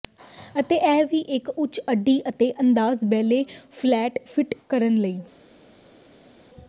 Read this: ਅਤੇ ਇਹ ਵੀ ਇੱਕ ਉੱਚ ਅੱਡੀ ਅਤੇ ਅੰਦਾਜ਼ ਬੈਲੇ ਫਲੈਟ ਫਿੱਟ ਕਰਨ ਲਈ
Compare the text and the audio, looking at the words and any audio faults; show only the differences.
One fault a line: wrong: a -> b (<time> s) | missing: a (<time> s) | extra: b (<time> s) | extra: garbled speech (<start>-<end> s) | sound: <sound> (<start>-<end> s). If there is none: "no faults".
no faults